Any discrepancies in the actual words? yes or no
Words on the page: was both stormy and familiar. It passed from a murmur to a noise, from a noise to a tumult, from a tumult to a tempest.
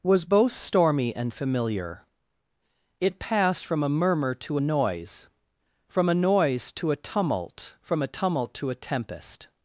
no